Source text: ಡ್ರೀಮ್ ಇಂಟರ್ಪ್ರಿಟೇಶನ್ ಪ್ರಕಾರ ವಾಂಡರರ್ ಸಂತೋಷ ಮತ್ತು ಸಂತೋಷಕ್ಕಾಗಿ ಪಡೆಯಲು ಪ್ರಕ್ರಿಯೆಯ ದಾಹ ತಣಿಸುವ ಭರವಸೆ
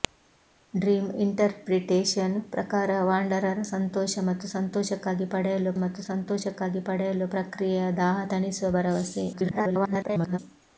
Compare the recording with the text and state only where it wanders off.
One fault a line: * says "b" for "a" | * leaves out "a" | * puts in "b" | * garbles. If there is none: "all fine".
* puts in "ಮತ್ತು ಸಂತೋಷಕ್ಕಾಗಿ ಪಡೆಯಲು"
* garbles